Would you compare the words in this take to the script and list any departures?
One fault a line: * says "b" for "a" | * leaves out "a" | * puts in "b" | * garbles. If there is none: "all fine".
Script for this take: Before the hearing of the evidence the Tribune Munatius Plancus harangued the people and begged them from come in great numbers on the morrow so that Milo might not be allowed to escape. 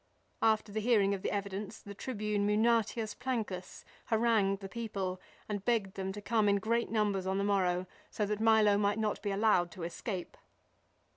* says "After" for "Before"
* says "to" for "from"